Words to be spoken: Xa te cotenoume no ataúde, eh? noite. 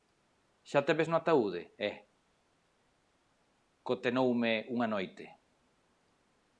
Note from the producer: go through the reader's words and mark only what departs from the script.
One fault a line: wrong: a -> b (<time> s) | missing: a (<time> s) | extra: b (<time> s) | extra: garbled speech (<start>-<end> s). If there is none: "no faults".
wrong: cotenoume -> ves (1.0 s)
extra: cotenoume unha (3.8 s)